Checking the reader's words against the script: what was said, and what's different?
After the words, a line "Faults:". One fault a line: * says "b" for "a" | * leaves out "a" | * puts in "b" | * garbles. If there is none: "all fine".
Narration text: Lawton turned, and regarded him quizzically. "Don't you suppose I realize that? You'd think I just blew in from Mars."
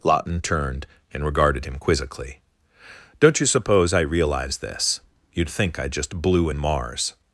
Lawton turned, and regarded him quizzically. "Don't you suppose I realize this? You'd think I just blew in Mars."
Faults:
* says "this" for "that"
* leaves out "from"